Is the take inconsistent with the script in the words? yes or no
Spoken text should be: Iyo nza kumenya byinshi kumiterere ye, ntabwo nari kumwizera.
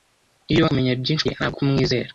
yes